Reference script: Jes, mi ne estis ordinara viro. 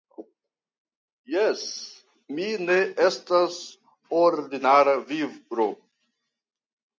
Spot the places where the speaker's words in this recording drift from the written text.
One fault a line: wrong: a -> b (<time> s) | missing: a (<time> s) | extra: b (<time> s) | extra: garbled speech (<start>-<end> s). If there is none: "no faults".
wrong: estis -> estas (3.1 s)